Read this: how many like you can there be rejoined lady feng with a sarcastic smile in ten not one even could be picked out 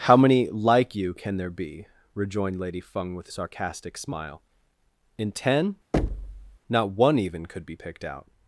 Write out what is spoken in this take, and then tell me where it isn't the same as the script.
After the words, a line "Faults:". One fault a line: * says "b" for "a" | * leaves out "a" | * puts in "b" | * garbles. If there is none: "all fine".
how many like you can there be rejoined lady feng with a sarcastic smile in ten not one even could be picked out
Faults:
all fine